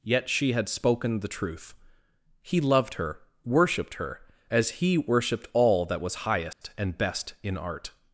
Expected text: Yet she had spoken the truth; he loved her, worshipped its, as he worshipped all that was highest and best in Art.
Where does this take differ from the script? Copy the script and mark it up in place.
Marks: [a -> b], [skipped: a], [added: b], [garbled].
Yet she had spoken the truth; he loved her, worshipped [its, -> her] as he worshipped all that was highest and best in Art.